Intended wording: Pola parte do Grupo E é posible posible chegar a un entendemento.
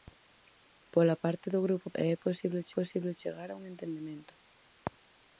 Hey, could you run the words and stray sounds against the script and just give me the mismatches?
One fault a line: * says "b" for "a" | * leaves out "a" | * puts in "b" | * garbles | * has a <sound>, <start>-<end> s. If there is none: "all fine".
all fine